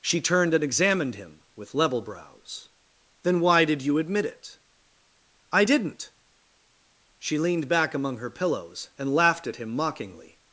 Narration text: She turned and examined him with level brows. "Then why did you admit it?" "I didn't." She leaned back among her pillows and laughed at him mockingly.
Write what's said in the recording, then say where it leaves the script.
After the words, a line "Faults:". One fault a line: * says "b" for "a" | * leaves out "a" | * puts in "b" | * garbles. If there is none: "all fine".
She turned and examined him with level brows. "Then why did you admit it?" "I didn't." She leaned back among her pillows and laughed at him mockingly.
Faults:
all fine